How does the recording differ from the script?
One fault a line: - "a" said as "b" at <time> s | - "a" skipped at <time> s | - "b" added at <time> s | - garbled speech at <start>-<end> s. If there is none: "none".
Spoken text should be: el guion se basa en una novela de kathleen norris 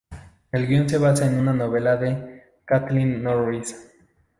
none